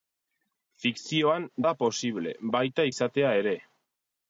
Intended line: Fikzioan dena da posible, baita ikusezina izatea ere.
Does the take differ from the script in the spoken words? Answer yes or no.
yes